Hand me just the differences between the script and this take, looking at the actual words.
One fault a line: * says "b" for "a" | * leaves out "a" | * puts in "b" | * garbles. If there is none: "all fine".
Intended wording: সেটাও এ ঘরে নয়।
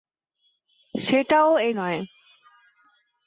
* leaves out "ঘরে"